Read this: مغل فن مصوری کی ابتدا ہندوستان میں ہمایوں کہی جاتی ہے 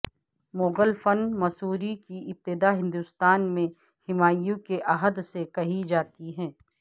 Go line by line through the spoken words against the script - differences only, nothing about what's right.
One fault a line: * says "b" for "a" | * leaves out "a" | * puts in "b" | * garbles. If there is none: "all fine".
* puts in "کے عہد سے"